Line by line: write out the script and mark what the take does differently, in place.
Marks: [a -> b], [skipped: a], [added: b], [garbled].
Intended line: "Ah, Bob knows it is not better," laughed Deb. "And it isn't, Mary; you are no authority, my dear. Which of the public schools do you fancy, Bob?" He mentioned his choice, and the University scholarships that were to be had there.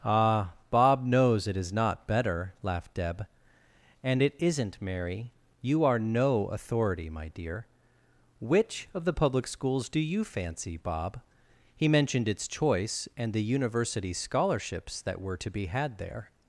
"Ah, Bob knows it is not better," laughed Deb. "And it isn't, Mary; you are no authority, my dear. Which of the public schools do you fancy, Bob?" He mentioned [his -> its] choice, and the University scholarships that were to be had there.